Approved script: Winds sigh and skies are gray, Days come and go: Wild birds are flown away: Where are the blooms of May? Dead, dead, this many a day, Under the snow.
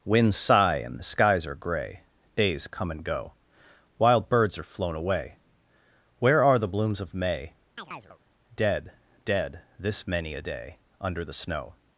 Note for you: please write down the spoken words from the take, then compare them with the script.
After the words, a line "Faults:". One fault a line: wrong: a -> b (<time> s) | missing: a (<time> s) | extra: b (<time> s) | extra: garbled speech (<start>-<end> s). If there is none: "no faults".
Winds sigh and the skies are gray, Days come and go: Wild birds are flown away: Where are the blooms of May? Dead, dead, this many a day, Under the snow.
Faults:
extra: the (1.0 s)